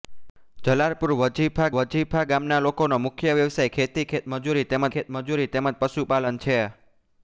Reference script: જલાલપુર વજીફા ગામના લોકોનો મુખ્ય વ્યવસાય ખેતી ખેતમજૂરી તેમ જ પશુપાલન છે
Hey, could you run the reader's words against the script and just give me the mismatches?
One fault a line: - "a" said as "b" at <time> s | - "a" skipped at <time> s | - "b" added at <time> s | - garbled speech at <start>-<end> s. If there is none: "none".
- "વજીફા" added at 1.7 s
- "ખેતમજૂરી તેમ" added at 4.9 s